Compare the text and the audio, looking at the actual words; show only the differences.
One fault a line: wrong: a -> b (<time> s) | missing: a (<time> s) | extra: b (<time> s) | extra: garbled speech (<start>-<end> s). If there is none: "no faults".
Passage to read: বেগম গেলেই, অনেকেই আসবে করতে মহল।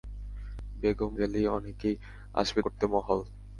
no faults